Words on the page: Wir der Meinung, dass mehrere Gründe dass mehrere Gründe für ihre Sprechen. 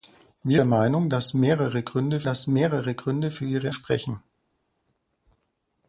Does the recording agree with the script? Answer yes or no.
yes